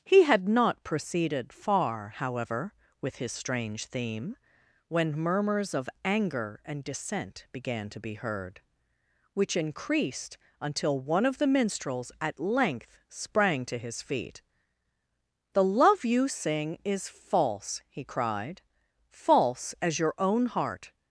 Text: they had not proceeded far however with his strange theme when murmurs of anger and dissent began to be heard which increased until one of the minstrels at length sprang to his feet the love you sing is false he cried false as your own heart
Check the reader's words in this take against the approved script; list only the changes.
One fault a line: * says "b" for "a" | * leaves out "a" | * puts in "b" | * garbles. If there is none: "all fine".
* says "he" for "they"